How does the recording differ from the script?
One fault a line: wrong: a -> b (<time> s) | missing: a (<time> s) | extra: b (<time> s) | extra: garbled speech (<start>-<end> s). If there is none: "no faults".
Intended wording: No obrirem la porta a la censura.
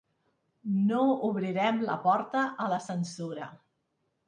no faults